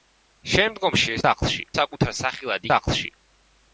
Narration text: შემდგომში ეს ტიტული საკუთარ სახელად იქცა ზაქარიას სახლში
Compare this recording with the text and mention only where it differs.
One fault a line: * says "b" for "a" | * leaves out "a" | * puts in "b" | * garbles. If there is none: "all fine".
* says "სახლში" for "ტიტული"
* leaves out "იქცა ზაქარიას"